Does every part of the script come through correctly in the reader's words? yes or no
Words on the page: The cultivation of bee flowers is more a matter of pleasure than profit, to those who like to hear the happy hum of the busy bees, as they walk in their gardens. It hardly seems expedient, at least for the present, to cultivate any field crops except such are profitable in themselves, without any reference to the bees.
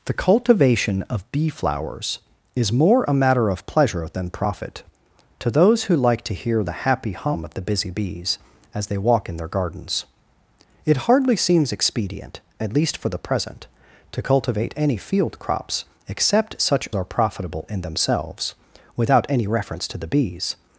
yes